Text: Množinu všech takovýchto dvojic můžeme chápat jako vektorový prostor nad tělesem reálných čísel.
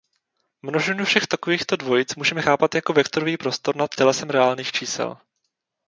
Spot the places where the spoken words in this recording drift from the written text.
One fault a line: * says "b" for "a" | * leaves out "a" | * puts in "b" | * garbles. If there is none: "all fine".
all fine